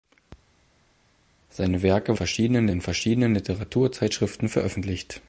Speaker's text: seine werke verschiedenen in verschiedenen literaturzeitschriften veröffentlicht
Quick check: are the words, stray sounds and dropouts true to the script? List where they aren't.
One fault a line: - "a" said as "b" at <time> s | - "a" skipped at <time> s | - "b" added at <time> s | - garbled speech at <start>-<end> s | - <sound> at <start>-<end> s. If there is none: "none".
none